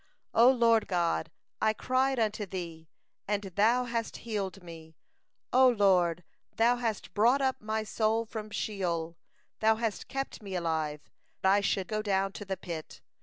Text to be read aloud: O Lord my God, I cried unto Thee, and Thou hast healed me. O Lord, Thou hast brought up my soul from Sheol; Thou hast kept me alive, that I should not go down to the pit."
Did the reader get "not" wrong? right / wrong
wrong